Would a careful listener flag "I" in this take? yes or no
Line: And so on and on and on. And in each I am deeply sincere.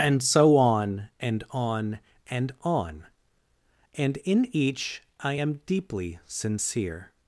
no